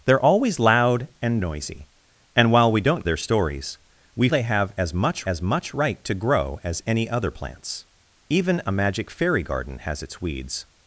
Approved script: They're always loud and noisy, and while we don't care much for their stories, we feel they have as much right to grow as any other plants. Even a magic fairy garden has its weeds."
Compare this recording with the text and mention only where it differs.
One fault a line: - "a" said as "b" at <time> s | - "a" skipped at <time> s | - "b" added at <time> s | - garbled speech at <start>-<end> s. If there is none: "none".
- "care much for" skipped at 3.0 s
- "feel" skipped at 4.3 s
- "as much" added at 5.2 s